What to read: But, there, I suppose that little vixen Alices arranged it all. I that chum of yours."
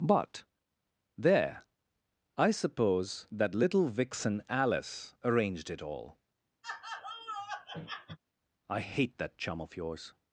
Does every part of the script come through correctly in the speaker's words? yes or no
no